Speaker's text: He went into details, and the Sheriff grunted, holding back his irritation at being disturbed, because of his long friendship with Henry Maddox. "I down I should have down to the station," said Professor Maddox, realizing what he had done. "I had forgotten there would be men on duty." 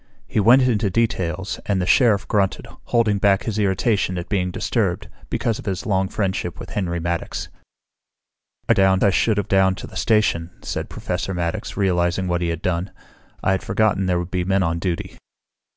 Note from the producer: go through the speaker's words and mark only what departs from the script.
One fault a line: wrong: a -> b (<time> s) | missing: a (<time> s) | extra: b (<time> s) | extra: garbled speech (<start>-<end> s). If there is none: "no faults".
no faults